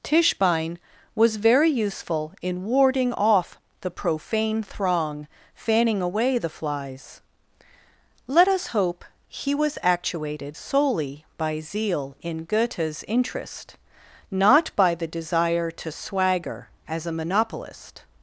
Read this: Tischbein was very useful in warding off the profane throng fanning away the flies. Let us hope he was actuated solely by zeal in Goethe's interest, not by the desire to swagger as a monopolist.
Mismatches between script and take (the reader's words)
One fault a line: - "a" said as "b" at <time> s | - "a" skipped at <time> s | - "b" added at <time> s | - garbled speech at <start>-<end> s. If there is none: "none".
none